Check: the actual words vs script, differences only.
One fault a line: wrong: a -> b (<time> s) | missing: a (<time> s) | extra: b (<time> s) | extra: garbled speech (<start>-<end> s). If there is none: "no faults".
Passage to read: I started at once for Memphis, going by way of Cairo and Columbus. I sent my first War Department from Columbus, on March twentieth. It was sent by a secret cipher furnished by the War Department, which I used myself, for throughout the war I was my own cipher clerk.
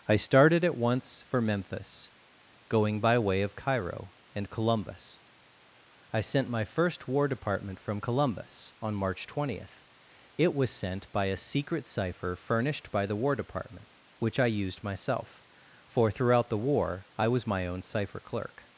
no faults